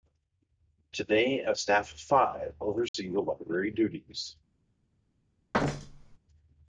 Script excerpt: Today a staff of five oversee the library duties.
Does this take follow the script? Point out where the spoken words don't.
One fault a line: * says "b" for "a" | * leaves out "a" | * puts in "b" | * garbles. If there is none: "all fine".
all fine